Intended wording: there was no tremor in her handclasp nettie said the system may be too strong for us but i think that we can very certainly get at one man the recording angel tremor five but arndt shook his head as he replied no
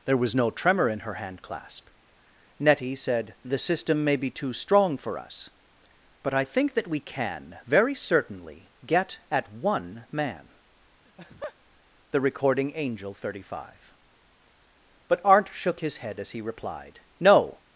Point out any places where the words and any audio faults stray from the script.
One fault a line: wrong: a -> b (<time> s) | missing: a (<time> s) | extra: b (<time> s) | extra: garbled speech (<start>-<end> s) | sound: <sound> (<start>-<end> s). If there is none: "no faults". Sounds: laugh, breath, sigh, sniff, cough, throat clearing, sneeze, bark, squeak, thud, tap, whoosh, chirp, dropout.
sound: laugh (11.1-11.6 s)
wrong: tremor -> thirty (13.1 s)